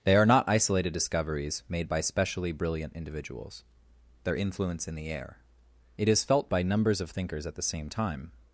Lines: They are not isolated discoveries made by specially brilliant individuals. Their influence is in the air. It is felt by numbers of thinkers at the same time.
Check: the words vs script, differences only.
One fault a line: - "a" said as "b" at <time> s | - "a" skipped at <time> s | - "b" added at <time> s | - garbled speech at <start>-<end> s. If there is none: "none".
- "is" skipped at 4.9 s